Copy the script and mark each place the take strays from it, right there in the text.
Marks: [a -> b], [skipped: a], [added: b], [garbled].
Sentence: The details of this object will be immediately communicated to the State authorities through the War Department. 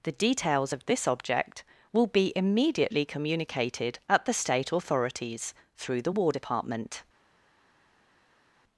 The details of this object will be immediately communicated [to -> at] the State authorities through the War Department.